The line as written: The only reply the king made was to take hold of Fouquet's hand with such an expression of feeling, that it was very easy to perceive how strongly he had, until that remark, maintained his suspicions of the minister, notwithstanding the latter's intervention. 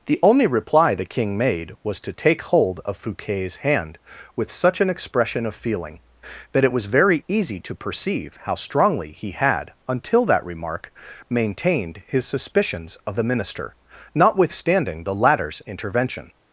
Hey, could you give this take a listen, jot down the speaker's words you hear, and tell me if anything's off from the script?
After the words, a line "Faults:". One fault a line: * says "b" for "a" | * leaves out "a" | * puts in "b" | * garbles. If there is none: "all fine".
The only reply the king made was to take hold of Fouquet's hand with such an expression of feeling, that it was very easy to perceive how strongly he had, until that remark, maintained his suspicions of the minister, notwithstanding the latter's intervention.
Faults:
all fine